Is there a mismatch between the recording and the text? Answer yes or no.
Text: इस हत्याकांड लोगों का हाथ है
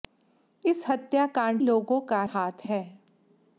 no